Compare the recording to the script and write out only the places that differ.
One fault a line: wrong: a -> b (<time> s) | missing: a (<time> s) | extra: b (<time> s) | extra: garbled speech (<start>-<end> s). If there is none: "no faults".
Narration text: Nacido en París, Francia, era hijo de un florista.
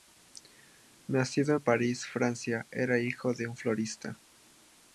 no faults